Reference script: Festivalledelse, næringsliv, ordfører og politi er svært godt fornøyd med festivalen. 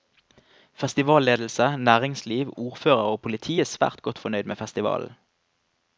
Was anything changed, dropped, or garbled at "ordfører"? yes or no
no